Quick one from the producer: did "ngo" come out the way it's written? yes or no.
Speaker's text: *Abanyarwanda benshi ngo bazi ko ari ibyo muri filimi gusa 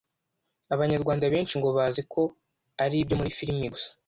yes